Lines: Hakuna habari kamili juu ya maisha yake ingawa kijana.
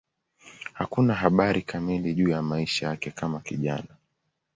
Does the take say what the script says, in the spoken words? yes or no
no